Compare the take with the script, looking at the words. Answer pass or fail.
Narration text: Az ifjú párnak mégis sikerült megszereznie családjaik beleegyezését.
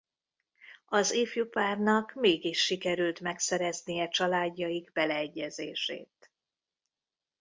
pass